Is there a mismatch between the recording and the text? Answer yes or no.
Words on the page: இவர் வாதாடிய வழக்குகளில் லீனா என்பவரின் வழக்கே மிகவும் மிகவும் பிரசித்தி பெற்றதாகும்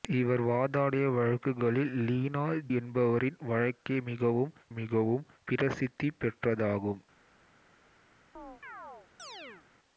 no